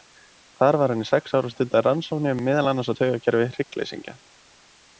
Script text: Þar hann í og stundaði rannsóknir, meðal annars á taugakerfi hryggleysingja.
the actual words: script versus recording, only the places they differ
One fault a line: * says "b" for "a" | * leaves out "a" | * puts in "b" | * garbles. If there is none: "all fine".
* puts in "var"
* puts in "sex ár"